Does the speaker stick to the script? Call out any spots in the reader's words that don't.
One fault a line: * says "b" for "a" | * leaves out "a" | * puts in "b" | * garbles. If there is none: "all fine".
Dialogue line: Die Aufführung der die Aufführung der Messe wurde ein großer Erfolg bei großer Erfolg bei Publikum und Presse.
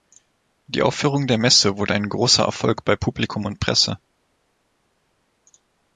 * leaves out "die Aufführung der"
* leaves out "großer Erfolg bei"